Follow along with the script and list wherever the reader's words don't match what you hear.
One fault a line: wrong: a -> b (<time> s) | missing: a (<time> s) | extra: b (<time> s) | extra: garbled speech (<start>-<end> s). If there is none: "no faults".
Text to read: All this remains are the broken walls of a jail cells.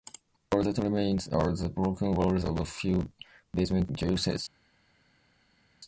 wrong: this -> that (0.6 s)
extra: few basement (2.6 s)